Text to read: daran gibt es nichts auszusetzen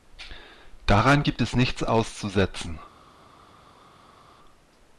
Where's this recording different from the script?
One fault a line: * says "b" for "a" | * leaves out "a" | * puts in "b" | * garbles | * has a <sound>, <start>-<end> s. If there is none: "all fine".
all fine